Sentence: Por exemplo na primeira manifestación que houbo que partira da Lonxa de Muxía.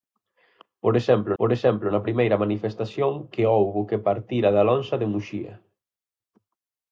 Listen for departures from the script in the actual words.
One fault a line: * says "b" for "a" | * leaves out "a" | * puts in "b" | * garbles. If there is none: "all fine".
* puts in "por exemplo"